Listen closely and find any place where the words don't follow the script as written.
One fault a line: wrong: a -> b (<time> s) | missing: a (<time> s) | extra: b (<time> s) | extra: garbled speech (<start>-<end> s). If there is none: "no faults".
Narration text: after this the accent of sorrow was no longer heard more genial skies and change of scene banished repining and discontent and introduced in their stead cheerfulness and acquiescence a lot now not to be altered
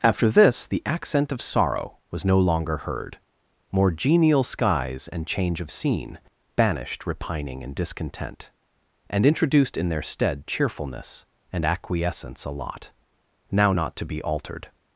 no faults